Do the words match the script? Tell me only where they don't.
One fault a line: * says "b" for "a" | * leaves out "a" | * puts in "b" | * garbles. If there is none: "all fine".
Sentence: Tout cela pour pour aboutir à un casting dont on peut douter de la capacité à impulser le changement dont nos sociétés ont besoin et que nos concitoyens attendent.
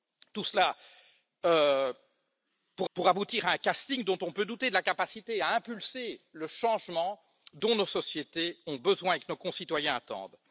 all fine